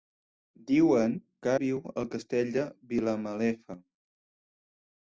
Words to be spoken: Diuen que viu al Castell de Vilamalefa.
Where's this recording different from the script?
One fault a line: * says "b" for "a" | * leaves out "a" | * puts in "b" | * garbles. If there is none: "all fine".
all fine